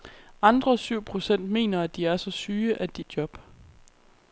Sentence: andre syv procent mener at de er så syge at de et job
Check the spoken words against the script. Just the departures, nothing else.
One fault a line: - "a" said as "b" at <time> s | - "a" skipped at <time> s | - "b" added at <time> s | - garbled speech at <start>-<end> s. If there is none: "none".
none